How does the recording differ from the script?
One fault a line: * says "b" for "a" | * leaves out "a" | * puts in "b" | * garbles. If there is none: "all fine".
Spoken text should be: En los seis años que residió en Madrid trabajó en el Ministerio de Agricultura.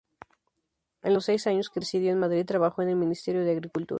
all fine